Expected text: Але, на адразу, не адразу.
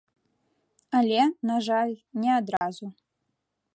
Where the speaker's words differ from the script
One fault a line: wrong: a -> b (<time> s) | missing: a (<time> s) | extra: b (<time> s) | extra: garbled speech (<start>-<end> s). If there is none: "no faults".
wrong: адразу -> жаль (1.7 s)